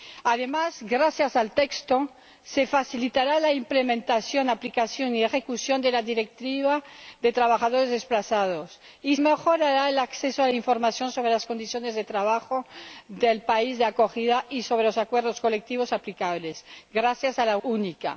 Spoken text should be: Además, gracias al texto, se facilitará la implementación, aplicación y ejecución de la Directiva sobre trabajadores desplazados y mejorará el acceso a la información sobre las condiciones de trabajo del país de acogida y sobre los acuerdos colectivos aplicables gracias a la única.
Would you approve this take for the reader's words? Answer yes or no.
yes